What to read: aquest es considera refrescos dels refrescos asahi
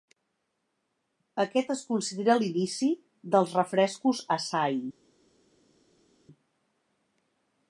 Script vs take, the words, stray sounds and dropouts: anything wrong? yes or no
yes